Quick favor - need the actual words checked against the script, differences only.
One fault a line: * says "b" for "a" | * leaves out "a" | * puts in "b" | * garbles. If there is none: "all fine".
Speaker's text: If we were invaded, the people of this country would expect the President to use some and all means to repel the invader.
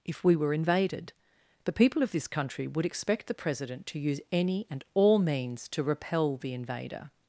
* says "any" for "some"